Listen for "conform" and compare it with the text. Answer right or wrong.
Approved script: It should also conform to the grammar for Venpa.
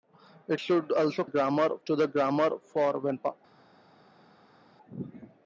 wrong